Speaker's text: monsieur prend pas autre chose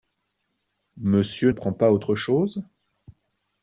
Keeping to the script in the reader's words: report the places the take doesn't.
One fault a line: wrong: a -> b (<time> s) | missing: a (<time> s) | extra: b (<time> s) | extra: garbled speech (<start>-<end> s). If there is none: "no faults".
no faults